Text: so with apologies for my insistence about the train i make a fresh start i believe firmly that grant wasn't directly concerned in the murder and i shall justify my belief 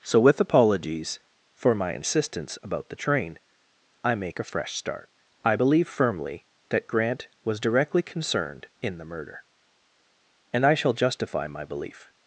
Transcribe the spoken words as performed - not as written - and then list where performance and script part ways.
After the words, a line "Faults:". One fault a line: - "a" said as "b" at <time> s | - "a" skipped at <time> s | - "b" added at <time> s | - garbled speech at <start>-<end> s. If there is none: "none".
so with apologies for my insistence about the train i make a fresh start i believe firmly that grant was directly concerned in the murder and i shall justify my belief
Faults:
- "wasn't" said as "was" at 7.4 s